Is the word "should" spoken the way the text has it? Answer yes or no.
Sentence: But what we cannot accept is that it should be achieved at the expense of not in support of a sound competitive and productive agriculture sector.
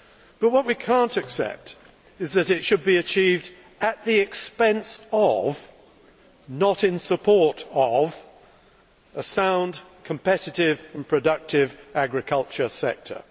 yes